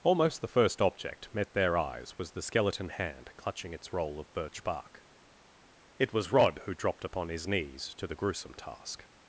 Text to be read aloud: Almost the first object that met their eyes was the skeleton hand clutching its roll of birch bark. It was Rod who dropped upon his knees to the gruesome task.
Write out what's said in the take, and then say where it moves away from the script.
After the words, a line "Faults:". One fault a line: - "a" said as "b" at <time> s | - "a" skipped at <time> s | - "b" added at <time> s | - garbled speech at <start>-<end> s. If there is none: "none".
Almost the first object met their eyes was the skeleton hand clutching its roll of birch bark. It was Rod who dropped upon his knees to the gruesome task.
Faults:
- "that" skipped at 1.3 s